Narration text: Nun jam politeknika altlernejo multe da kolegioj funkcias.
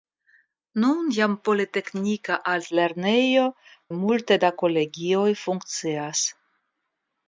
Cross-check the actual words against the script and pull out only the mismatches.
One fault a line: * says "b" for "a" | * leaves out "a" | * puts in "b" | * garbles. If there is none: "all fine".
all fine